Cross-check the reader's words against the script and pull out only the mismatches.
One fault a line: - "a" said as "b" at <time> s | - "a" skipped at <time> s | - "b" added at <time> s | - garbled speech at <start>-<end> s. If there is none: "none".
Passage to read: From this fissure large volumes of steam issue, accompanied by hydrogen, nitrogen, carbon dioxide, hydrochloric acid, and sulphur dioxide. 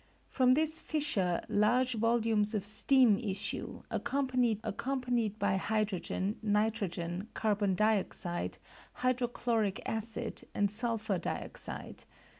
- "accompanied" added at 4.6 s